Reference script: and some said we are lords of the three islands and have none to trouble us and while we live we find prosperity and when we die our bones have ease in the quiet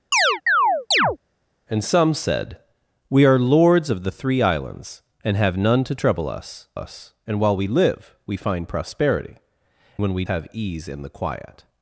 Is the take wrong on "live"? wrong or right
right